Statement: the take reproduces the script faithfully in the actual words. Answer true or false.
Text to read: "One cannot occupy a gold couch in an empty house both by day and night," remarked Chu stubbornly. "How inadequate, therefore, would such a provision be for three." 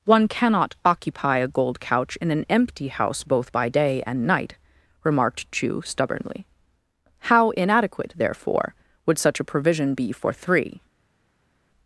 true